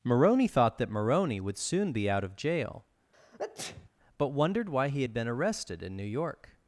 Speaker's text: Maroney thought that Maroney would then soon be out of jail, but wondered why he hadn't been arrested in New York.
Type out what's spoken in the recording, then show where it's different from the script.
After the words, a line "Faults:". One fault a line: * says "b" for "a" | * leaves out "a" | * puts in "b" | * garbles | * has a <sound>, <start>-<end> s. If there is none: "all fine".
Maroney thought that Maroney would soon be out of jail, but wondered why he had been arrested in New York.
Faults:
* leaves out "then"
* has a sneeze, 3.1-3.9 s
* says "had" for "hadn't"